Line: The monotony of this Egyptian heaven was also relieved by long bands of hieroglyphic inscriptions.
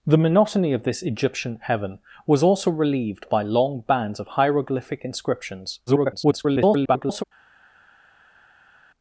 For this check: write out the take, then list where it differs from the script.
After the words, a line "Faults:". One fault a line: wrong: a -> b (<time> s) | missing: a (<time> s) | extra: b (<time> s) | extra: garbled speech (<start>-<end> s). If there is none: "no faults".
The monotony of this Egyptian heaven was also relieved by long bands of hieroglyphic inscriptions. [garbled]
Faults:
extra: garbled speech (5.9-7.2 s)